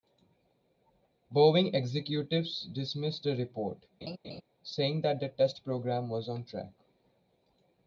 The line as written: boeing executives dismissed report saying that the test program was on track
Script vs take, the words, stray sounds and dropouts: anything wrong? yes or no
yes